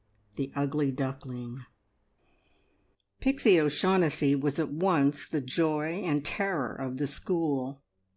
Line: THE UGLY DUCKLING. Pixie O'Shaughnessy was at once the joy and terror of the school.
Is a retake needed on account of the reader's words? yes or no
no